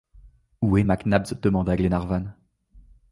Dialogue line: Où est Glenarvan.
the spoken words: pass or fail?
fail